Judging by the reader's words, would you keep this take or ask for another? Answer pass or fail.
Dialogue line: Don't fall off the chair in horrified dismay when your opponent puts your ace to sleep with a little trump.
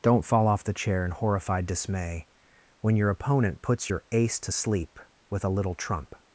pass